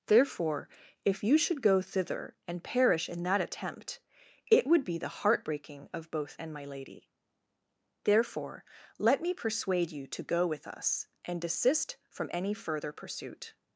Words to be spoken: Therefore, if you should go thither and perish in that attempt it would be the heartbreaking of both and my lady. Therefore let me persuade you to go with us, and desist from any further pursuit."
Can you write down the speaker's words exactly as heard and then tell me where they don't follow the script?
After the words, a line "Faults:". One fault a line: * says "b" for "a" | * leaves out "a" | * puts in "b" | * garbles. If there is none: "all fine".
Therefore, if you should go thither and perish in that attempt it would be the heartbreaking of both and my lady. Therefore let me persuade you to go with us, and desist from any further pursuit."
Faults:
all fine